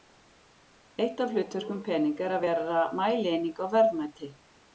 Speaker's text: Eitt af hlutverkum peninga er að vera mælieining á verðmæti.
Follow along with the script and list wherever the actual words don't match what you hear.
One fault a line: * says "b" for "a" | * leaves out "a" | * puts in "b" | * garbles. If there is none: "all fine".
all fine